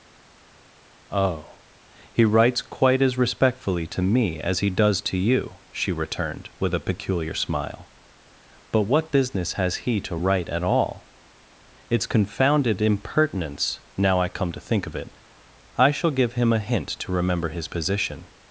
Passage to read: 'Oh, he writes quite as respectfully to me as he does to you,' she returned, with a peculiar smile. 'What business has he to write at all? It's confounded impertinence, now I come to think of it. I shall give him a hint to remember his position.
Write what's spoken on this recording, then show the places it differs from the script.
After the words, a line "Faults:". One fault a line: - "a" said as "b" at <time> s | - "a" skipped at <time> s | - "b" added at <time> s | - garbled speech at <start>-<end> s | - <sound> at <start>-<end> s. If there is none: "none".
'Oh, he writes quite as respectfully to me as he does to you,' she returned, with a peculiar smile. 'But what business has he to write at all? It's confounded impertinence, now I come to think of it. I shall give him a hint to remember his position.
Faults:
- "But" added at 8.7 s